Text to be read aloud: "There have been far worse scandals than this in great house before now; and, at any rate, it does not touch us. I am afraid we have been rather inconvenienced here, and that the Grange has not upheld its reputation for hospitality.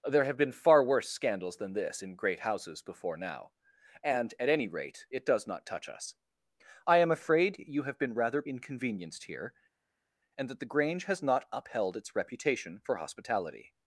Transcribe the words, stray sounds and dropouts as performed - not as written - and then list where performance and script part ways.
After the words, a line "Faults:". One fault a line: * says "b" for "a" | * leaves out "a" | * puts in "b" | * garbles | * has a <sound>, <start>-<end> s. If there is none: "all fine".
"There have been far worse scandals than this in great houses before now; and, at any rate, it does not touch us. I am afraid you have been rather inconvenienced here, and that the Grange has not upheld its reputation for hospitality.
Faults:
* says "houses" for "house"
* says "you" for "we"